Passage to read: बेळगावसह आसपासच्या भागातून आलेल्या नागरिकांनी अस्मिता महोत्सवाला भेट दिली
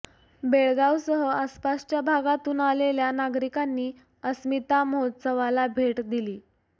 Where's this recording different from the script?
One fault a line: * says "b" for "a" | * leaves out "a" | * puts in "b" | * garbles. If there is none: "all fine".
all fine